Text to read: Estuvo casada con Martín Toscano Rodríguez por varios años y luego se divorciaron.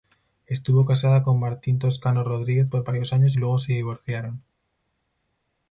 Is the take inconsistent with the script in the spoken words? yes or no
no